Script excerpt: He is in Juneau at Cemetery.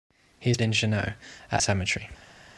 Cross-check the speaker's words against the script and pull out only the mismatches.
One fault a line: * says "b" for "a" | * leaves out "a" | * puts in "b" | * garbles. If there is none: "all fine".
all fine